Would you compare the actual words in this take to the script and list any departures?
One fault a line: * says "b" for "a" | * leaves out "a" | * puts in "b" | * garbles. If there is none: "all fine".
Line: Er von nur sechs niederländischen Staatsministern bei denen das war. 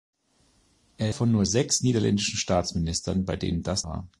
all fine